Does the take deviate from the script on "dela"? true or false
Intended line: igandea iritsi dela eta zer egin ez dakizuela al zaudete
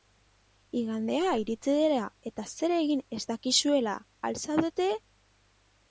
false